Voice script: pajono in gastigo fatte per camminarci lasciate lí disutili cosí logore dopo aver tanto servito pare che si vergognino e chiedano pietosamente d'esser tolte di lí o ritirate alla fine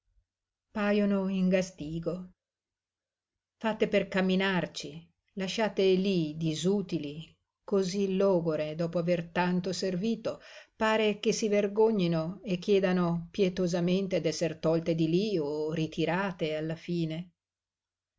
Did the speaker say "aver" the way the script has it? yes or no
yes